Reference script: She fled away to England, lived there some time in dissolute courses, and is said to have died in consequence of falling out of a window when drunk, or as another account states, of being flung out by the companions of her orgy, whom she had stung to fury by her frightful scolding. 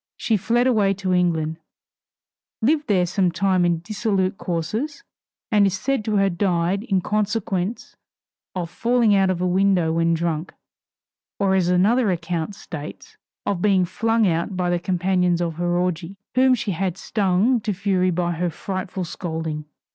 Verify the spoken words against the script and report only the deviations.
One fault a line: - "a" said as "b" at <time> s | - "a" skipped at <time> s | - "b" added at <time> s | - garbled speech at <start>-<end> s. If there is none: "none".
none